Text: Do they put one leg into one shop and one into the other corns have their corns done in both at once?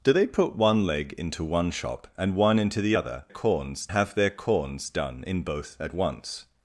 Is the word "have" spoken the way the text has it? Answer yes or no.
yes